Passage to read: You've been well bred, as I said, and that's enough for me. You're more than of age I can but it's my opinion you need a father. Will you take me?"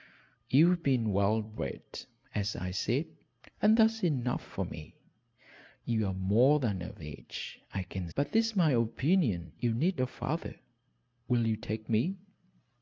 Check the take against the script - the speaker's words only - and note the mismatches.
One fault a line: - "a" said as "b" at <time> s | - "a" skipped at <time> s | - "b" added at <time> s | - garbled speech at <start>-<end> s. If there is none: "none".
none